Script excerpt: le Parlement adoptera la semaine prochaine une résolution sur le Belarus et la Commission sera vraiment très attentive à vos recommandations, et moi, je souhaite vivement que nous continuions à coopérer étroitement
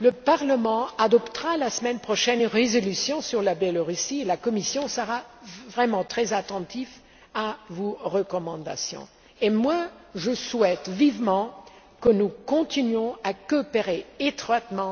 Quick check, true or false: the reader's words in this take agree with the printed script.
true